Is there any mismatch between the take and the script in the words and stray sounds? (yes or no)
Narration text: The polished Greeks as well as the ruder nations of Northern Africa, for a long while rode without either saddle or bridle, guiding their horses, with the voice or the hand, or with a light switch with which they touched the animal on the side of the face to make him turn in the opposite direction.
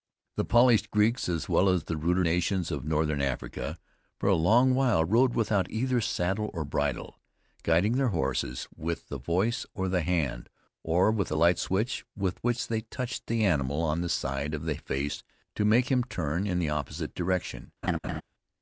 yes